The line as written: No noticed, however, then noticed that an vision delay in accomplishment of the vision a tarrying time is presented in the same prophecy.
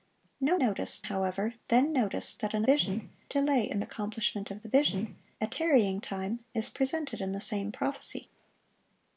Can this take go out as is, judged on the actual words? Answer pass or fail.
pass